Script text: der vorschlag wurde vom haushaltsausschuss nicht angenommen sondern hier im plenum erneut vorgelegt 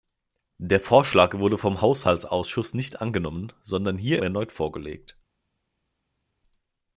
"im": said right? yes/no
no